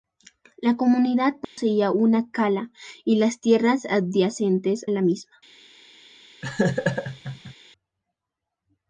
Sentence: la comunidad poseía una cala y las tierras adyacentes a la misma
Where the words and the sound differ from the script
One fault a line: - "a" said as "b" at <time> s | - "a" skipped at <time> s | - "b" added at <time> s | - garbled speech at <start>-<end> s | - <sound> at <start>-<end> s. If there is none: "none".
- dropout at 1.4-1.6 s
- "a" skipped at 4.9 s
- laugh at 6.4-7.5 s